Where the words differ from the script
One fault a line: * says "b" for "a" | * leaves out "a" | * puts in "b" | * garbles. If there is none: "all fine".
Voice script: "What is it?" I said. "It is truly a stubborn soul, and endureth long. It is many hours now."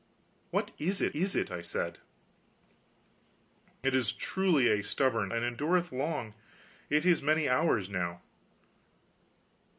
* puts in "is it"
* leaves out "soul"